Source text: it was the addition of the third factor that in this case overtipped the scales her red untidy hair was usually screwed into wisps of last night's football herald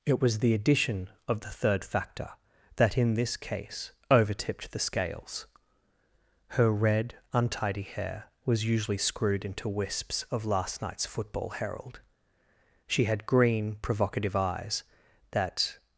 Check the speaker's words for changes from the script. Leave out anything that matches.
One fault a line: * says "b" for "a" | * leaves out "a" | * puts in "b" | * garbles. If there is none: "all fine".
* puts in "she had green provocative eyes that"